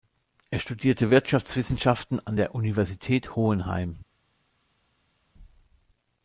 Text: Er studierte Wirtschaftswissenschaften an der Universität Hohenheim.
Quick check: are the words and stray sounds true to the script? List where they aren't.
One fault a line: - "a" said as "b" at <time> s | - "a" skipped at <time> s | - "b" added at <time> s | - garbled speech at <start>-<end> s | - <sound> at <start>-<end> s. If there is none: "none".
none